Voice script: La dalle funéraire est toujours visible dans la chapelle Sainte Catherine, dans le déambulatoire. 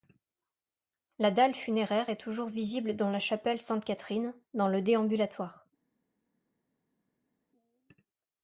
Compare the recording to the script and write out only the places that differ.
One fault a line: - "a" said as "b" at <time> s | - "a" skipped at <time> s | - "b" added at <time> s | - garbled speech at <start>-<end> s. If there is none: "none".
none